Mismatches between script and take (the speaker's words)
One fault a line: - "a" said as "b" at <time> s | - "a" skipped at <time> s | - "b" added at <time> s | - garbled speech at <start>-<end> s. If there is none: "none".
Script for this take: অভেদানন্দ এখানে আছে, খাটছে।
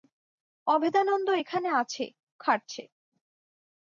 none